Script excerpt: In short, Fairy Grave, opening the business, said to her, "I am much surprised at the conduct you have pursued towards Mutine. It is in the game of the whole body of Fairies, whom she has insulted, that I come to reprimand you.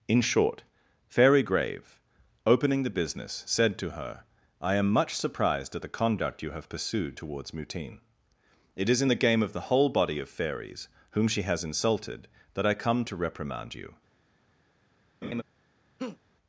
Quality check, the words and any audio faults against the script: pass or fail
fail